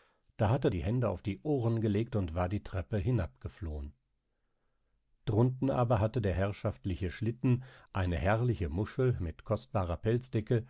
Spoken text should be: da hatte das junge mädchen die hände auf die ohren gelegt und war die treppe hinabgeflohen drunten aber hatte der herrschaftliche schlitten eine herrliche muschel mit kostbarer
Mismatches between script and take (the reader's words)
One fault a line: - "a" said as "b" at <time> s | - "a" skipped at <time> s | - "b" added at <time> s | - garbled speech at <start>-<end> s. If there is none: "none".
- "das junge mädchen" skipped at 0.7 s